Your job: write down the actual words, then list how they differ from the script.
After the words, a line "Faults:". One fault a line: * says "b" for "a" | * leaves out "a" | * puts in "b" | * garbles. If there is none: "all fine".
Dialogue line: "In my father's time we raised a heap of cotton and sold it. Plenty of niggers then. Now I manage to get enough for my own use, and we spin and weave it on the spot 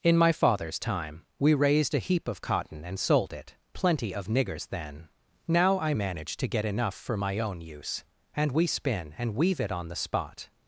"In my father's time we raised a heap of cotton and sold it. Plenty of niggers then. Now I manage to get enough for my own use, and we spin and weave it on the spot
Faults:
all fine